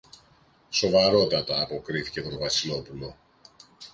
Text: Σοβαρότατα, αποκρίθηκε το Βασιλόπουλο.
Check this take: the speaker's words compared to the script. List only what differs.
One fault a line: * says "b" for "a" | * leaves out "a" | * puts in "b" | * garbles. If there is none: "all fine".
* puts in "το"